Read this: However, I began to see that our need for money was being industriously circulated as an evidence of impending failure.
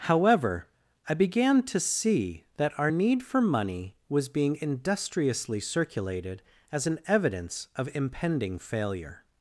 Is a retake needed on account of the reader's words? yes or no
no